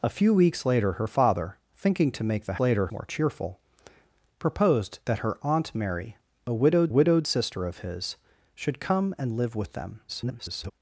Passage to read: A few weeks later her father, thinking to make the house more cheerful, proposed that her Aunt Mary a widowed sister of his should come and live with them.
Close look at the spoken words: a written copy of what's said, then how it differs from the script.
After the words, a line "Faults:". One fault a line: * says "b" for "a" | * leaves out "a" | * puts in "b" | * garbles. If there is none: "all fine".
A few weeks later her father, thinking to make the later more cheerful, proposed that her Aunt Mary a widowed widowed sister of his should come and live with them. [garbled]
Faults:
* says "later" for "house"
* puts in "widowed"
* garbles